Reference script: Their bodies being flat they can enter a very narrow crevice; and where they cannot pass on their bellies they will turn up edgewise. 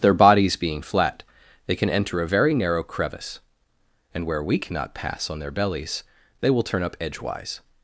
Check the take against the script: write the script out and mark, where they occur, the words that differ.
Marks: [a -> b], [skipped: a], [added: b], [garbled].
Their bodies being flat they can enter a very narrow crevice; and where [they -> we] cannot pass on their bellies they will turn up edgewise.